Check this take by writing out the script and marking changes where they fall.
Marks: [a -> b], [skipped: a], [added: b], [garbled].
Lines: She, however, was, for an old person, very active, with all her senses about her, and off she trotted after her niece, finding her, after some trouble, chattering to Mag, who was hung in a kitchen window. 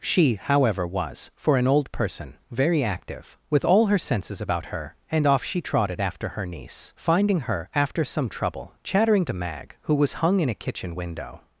She, however, was, for an old person, very active, with all her senses about her, and off she trotted after her niece, finding her, after some trouble, chattering to Mag, who was hung in a kitchen window.